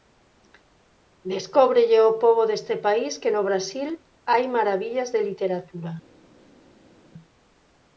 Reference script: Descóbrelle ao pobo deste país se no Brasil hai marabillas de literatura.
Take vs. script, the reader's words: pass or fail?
fail